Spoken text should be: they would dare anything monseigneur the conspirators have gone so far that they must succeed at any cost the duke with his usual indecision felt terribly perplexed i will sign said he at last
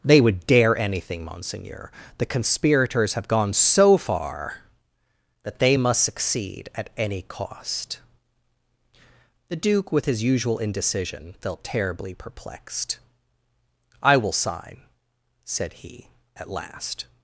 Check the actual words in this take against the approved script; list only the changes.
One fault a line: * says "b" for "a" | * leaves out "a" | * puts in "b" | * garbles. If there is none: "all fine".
all fine